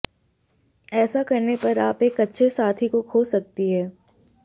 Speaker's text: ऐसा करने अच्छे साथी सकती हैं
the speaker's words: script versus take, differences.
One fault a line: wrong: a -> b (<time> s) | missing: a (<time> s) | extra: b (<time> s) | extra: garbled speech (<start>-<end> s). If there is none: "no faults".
extra: पर आप एक (1.5 s)
extra: को खो (2.9 s)